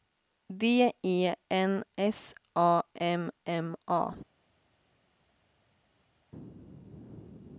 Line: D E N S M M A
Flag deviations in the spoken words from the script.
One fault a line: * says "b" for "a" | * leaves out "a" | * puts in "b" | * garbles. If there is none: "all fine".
* puts in "A"